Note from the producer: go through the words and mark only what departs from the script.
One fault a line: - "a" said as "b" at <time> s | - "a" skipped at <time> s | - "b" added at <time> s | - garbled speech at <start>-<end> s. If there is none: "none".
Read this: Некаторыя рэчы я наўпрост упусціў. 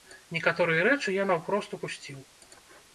none